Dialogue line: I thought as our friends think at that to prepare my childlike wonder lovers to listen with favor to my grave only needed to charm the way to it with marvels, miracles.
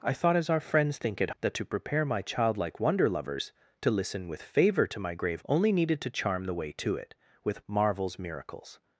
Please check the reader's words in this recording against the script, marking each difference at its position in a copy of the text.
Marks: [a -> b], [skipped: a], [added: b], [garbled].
I thought as our friends think at that to prepare my childlike wonder lovers to listen with favor to my grave only needed to charm the way to it with marvels, miracles.